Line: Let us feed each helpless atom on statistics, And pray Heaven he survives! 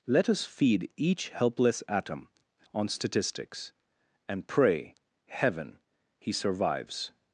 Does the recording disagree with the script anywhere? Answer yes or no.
no